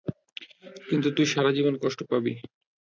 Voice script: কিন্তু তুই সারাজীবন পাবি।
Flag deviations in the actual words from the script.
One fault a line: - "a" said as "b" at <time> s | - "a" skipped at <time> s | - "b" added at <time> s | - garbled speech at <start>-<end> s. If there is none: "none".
- "কষ্ট" added at 1.8 s